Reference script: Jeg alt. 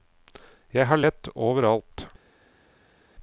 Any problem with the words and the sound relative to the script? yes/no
yes